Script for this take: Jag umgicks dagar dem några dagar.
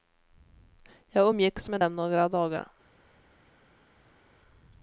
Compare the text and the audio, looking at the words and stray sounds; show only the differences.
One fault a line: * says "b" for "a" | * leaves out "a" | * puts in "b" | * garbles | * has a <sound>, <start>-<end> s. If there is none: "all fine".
* says "med" for "dagar"